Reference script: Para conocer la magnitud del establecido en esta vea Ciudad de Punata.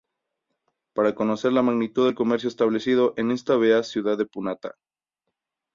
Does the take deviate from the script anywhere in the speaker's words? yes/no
yes